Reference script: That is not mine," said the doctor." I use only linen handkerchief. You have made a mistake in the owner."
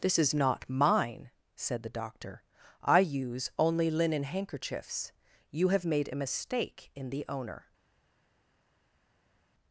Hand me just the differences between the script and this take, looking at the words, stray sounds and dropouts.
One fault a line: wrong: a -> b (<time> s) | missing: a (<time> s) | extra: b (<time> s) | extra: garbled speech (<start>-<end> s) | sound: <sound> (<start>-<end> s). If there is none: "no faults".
wrong: That -> This (0.0 s)
wrong: handkerchief -> handkerchiefs (4.2 s)